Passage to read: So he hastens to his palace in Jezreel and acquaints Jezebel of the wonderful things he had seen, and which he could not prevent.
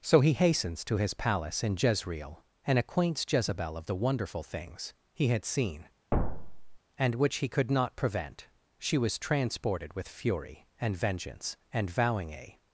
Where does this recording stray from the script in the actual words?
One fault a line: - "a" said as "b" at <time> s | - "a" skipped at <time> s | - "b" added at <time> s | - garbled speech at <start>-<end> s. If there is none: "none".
- "She was transported with fury and vengeance and vowing a" added at 8.8 s